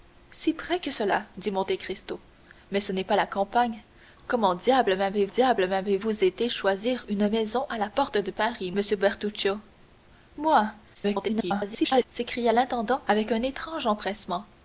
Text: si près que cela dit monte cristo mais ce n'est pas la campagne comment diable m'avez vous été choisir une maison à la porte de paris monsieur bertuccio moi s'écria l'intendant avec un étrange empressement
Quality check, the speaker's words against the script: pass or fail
fail